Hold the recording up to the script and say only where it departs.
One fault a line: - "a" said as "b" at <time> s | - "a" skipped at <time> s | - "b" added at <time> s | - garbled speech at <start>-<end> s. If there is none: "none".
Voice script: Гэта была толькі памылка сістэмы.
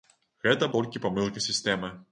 - "была" skipped at 0.7 s